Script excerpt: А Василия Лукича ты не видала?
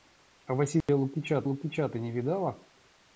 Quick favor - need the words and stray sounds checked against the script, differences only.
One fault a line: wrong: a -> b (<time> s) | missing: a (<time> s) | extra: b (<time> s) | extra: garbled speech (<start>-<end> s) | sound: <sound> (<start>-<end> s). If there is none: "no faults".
sound: dropout (0.8-0.9 s)
extra: Лукича (1.4 s)